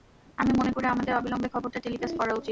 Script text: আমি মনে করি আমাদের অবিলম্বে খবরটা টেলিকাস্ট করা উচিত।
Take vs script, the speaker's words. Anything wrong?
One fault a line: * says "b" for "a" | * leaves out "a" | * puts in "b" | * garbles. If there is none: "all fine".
all fine